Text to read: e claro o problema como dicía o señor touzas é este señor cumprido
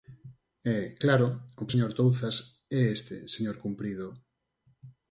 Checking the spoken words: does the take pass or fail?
fail